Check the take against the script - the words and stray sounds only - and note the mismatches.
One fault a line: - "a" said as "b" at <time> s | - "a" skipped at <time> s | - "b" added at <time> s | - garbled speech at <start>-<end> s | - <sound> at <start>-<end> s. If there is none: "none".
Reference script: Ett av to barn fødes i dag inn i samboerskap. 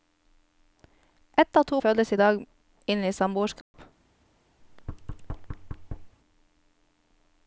- "barn" skipped at 1.8 s
- dropout at 3.6-3.7 s
- thud at 4.6-6.2 s